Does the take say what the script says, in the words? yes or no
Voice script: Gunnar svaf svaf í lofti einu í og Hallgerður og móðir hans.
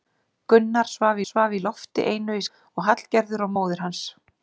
yes